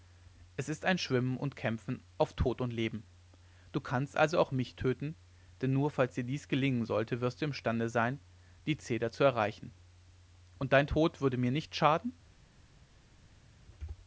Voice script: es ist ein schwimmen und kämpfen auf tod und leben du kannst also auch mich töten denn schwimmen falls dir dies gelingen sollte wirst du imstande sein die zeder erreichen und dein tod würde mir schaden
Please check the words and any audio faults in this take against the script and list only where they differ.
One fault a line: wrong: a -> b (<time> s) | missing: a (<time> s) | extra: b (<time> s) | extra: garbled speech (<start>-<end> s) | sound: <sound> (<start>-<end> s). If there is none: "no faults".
wrong: schwimmen -> nur (5.7 s)
extra: zu (9.1 s)
extra: nicht (11.5 s)